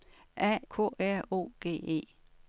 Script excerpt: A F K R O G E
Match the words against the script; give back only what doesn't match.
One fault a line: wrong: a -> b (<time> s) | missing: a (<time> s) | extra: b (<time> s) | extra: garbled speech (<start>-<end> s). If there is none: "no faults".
missing: F (0.6 s)